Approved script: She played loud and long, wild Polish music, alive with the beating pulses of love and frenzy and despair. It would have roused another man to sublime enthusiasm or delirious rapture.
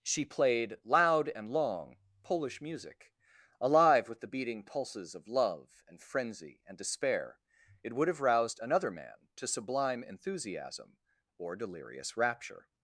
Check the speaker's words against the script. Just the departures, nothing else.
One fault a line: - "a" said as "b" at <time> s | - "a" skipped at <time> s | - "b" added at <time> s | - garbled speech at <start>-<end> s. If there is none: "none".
- "wild" skipped at 2.0 s